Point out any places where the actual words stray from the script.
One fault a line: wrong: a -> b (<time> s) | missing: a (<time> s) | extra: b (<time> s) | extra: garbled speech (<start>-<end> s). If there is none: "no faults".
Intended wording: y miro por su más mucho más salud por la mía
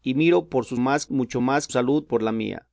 no faults